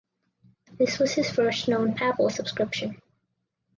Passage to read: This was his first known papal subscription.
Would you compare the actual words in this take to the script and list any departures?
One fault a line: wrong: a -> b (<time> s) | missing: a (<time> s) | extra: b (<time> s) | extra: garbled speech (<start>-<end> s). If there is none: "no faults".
no faults